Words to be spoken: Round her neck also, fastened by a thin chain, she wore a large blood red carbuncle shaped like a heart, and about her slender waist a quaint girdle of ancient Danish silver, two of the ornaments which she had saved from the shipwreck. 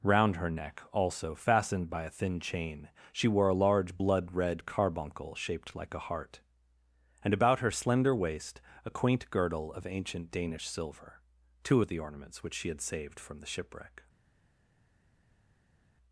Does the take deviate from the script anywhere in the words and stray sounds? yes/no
no